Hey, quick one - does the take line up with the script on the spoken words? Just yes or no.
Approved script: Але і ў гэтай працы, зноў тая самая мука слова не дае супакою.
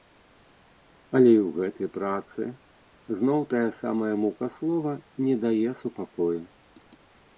yes